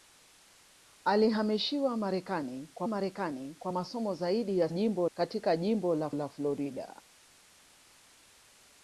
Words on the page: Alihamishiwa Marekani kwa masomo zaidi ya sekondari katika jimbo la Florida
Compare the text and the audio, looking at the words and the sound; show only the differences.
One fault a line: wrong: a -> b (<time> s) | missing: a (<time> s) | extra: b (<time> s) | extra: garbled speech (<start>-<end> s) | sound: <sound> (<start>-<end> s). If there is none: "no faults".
extra: Marekani kwa (2.9 s)
wrong: sekondari -> jimbo (4.7 s)
extra: la (6.1 s)